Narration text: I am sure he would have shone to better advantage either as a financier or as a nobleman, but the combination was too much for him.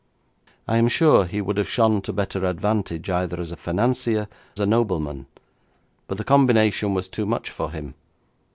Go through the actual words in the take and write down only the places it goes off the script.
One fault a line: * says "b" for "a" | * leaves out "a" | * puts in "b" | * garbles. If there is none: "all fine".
* leaves out "or as"